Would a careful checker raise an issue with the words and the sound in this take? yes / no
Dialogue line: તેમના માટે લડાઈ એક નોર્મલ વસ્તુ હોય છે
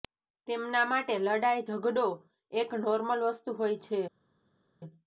yes